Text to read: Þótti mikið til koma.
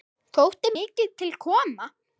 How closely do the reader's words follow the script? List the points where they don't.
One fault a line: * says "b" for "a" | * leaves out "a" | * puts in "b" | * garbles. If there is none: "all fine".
all fine